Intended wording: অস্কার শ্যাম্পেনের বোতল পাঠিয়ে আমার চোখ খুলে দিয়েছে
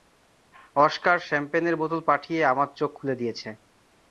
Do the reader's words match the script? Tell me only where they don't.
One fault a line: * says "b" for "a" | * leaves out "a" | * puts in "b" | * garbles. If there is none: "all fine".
all fine